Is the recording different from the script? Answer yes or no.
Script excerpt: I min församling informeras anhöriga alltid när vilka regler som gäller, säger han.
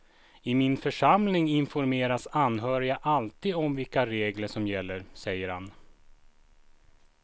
yes